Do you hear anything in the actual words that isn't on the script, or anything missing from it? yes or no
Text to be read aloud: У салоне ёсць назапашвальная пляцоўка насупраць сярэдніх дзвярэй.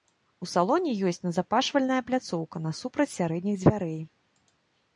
no